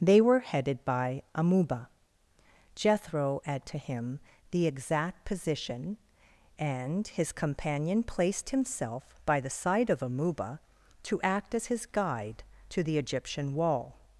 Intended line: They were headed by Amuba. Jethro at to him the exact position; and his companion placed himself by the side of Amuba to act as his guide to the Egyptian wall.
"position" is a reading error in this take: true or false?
false